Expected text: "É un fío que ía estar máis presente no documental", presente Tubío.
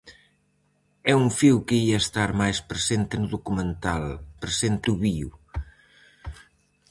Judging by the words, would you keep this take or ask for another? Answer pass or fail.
pass